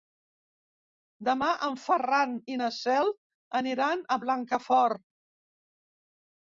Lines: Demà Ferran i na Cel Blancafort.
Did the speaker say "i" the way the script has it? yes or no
yes